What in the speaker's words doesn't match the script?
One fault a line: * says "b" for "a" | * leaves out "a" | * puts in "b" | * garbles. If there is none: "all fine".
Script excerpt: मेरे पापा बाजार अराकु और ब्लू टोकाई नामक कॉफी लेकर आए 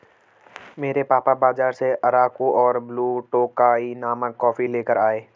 * puts in "से"